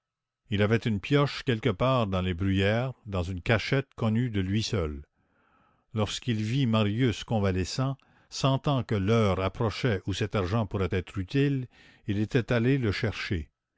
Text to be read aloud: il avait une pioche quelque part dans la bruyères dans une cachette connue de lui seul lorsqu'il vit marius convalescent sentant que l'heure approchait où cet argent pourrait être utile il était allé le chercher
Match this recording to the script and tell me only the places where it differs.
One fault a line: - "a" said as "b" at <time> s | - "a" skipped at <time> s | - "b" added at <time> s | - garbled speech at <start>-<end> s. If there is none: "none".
- "la" said as "les" at 2.2 s